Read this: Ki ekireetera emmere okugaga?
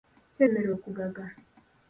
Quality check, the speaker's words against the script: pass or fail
fail